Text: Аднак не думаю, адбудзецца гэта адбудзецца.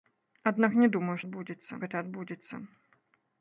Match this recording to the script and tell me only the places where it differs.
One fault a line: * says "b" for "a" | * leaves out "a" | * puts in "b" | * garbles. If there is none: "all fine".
all fine